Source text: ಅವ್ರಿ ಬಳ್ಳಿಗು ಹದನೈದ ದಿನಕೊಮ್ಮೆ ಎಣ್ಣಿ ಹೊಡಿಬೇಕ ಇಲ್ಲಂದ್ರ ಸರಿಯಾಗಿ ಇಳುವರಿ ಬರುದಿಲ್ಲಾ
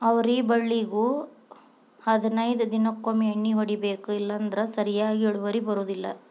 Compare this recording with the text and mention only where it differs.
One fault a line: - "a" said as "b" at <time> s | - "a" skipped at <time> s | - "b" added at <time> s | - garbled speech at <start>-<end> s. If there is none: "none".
none